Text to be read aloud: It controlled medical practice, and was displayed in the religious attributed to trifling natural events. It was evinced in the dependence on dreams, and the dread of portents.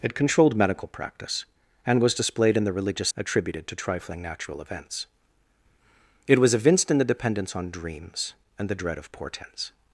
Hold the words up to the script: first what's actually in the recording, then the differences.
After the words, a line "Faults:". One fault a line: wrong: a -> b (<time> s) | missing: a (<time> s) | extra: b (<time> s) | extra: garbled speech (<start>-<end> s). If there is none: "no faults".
It controlled medical practice, and was displayed in the religious attributed to trifling natural events. It was evinced in the dependence on dreams, and the dread of portents.
Faults:
no faults